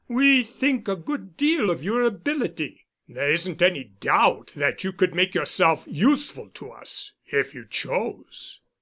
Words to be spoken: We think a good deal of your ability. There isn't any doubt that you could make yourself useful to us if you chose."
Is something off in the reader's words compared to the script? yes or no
no